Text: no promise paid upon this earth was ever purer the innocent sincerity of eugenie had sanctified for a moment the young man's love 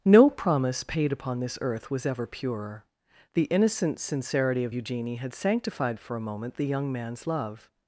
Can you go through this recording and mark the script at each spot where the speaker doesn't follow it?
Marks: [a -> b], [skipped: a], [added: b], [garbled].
no promise paid upon this earth was ever purer the innocent sincerity of eugenie had sanctified for a moment the young man's love